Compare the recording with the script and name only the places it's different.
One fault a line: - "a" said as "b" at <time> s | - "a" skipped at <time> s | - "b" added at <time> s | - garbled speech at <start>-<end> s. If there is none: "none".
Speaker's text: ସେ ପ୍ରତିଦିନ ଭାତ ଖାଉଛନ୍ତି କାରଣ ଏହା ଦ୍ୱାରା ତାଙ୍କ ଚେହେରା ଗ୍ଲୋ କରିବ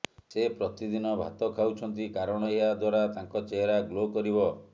none